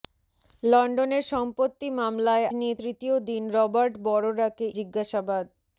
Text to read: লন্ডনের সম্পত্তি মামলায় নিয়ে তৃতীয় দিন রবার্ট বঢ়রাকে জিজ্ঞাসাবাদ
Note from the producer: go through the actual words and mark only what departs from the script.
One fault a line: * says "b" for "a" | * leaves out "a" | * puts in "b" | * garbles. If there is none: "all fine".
all fine